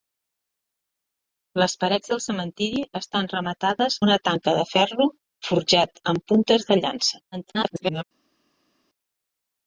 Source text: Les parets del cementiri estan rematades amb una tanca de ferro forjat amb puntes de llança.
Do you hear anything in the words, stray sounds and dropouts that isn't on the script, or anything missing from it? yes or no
yes